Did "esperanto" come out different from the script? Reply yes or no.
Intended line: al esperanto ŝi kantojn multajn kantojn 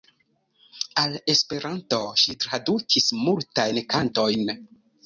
no